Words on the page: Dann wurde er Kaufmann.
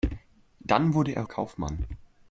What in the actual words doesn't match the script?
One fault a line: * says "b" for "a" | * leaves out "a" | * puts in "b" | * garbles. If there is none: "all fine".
all fine